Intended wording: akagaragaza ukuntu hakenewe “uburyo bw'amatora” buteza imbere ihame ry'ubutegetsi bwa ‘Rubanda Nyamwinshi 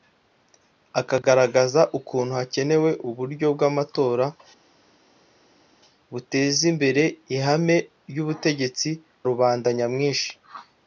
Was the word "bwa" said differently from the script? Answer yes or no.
yes